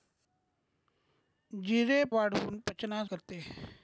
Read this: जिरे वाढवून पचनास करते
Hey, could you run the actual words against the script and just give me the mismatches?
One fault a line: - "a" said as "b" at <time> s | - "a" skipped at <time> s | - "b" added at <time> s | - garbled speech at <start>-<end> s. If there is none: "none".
none